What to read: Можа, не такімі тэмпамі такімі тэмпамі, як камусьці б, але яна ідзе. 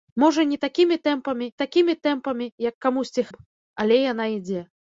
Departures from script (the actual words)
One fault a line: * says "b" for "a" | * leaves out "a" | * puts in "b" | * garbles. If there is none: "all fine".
all fine